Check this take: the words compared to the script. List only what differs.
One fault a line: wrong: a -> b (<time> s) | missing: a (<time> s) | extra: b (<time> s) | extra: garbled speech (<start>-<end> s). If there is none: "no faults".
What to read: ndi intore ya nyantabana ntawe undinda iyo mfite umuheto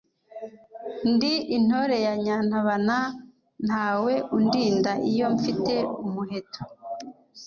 no faults